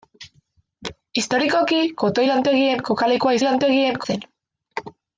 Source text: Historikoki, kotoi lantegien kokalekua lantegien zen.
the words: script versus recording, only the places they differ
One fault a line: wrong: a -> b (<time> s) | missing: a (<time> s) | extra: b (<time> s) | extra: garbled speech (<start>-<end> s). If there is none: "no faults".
no faults